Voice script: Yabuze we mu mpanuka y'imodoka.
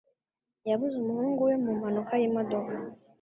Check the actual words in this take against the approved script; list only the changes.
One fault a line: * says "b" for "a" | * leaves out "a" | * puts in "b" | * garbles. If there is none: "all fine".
* puts in "umuhungu"